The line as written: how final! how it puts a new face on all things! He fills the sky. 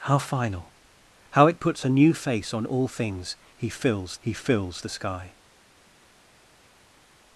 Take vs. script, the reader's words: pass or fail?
fail